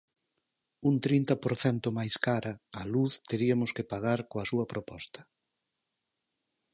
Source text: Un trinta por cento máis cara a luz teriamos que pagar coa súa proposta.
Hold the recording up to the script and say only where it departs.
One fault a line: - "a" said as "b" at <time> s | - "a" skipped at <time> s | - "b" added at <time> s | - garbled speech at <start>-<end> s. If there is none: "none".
none